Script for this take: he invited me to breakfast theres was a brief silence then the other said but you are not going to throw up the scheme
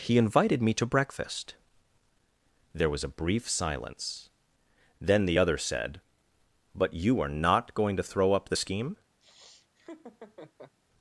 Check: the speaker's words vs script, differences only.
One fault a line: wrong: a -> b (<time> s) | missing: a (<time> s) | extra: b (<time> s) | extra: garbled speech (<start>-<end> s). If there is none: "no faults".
wrong: theres -> there (2.7 s)